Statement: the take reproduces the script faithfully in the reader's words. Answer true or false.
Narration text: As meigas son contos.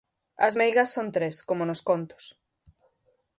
false